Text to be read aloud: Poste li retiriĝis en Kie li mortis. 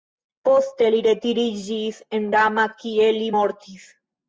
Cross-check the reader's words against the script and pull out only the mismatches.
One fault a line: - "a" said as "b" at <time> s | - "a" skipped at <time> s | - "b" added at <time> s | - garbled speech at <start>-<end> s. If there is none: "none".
- "Rama" added at 2.4 s